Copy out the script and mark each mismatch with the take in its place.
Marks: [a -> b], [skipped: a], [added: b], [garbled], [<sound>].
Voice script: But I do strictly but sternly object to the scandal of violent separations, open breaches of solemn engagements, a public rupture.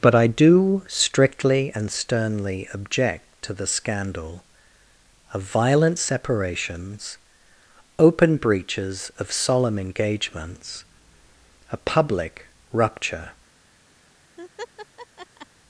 But I do strictly [but -> and] sternly object to the scandal of violent separations, open breaches of solemn engagements, a public rupture. [laugh]